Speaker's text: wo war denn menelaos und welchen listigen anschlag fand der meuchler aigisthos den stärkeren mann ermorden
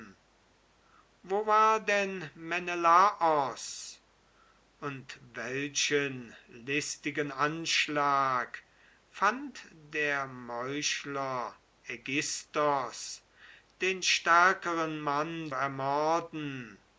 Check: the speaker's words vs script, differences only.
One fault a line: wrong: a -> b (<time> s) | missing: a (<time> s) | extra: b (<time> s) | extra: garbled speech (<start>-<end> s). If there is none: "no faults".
no faults